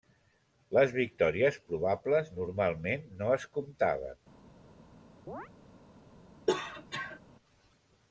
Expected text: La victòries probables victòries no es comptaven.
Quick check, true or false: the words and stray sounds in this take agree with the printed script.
false